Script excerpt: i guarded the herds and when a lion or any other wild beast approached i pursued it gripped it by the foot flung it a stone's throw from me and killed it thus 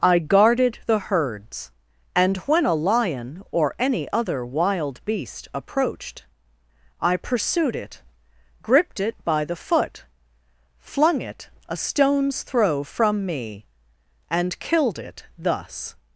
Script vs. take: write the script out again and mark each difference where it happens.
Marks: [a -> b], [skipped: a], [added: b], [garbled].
i guarded the herds and when a lion or any other wild beast approached i pursued it gripped it by the foot flung it a stone's throw from me and killed it thus